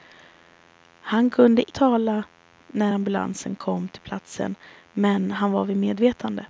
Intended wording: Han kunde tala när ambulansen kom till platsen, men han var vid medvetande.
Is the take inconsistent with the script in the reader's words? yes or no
no